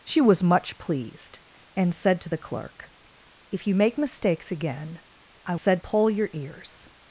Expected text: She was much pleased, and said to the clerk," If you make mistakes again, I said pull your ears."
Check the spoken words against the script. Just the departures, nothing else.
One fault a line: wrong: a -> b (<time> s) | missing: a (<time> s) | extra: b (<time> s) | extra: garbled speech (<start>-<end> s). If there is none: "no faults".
no faults